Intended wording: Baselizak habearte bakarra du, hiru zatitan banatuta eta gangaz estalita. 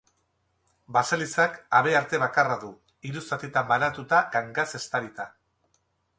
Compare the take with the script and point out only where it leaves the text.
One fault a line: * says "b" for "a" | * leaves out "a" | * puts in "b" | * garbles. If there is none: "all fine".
* leaves out "eta"